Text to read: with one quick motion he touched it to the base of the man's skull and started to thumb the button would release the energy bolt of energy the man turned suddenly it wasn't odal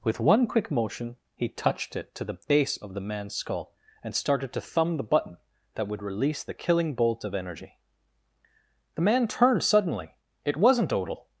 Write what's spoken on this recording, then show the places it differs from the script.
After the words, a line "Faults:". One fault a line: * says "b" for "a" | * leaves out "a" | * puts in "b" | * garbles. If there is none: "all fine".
with one quick motion he touched it to the base of the man's skull and started to thumb the button that would release the killing bolt of energy the man turned suddenly it wasn't odal
Faults:
* puts in "that"
* says "killing" for "energy"